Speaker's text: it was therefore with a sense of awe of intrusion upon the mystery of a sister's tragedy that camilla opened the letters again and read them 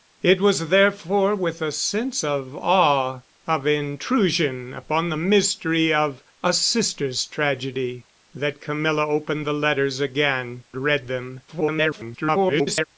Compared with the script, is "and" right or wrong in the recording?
wrong